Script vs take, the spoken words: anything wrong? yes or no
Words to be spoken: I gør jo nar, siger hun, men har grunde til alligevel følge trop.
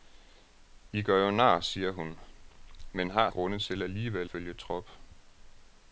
no